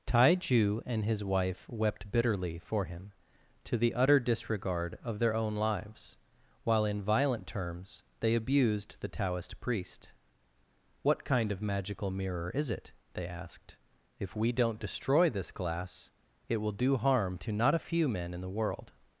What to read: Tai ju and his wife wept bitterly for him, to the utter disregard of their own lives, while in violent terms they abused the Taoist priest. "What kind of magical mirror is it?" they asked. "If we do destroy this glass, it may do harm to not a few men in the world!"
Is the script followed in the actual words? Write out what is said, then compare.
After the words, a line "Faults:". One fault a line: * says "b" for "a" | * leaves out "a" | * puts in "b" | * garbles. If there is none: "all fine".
Tai ju and his wife wept bitterly for him, to the utter disregard of their own lives, while in violent terms they abused the Taoist priest. "What kind of magical mirror is it?" they asked. "If we don't destroy this glass, it will do harm to not a few men in the world!"
Faults:
* says "don't" for "do"
* says "will" for "may"